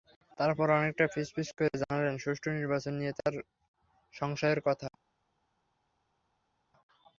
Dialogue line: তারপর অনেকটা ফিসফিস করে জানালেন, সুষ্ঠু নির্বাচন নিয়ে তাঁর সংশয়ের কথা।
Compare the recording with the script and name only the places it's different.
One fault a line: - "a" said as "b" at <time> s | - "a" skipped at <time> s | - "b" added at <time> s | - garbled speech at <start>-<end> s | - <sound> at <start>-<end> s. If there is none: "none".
none